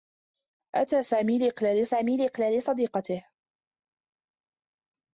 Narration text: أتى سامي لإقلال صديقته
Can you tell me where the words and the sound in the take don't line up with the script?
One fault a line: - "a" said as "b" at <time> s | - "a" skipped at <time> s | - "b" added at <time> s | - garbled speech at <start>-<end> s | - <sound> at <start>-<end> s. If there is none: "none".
- "سامي لإقلال" added at 1.8 s